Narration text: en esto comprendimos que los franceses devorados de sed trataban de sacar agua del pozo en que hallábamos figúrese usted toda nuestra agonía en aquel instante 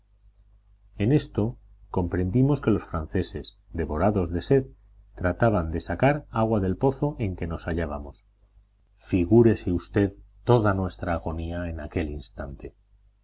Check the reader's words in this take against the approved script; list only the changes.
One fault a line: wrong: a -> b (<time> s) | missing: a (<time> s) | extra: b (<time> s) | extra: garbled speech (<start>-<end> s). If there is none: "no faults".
extra: nos (7.5 s)